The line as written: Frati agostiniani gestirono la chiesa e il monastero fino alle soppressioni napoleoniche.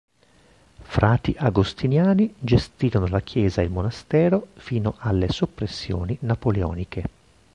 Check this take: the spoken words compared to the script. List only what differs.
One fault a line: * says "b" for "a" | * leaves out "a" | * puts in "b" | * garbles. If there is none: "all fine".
all fine